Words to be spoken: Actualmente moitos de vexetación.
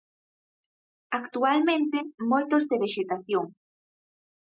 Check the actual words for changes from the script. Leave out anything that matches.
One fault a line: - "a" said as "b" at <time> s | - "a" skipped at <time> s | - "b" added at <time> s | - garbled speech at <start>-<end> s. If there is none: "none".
none